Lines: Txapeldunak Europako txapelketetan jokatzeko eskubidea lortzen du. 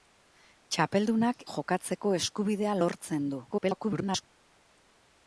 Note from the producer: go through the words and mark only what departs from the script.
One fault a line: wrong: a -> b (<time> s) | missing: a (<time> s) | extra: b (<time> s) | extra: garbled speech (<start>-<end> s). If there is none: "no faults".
missing: Europako txapelketetan (1.4 s)
extra: garbled speech (3.5-4.2 s)